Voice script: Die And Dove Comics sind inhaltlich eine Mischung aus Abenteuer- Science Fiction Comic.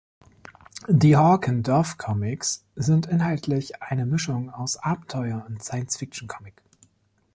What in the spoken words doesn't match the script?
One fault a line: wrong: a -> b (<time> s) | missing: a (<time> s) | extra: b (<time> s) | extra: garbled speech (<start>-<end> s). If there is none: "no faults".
extra: Hawk (1.1 s)
extra: und (5.5 s)